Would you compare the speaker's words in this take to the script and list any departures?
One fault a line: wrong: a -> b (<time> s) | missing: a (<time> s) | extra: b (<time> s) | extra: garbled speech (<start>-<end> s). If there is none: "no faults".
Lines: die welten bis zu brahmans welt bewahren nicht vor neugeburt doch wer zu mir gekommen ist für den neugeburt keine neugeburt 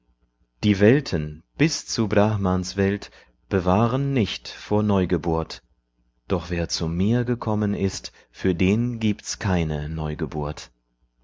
wrong: neugeburt -> gibt's (9.0 s)